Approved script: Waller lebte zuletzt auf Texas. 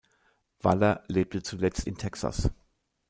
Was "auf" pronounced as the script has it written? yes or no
no